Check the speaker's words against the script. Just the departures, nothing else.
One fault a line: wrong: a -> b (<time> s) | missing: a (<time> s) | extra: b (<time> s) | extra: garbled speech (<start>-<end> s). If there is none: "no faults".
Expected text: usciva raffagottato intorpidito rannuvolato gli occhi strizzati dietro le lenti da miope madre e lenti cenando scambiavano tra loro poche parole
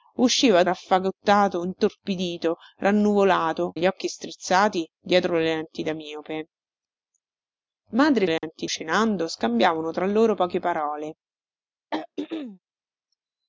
no faults